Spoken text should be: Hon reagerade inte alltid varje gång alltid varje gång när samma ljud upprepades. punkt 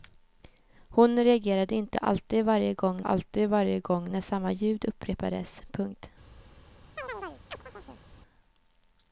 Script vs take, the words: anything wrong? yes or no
no